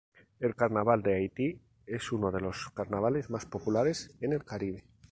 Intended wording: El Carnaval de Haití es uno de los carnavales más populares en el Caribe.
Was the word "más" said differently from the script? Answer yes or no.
no